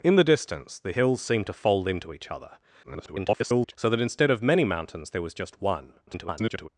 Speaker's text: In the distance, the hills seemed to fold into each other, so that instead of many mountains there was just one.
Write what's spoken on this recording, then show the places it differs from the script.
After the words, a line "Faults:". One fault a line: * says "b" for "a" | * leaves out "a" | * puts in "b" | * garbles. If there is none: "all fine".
In the distance, the hills seemed to fold into each other, [garbled] so that instead of many mountains there was just one. [garbled]
Faults:
* garbles
* garbles